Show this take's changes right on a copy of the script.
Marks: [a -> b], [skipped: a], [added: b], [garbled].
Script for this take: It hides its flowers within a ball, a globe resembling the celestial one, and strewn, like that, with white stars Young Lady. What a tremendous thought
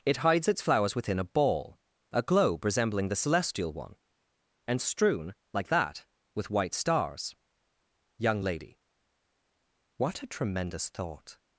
It hides its flowers within a ball, a globe resembling the celestial one, and strewn, like that, with white stars Young Lady. What a tremendous thought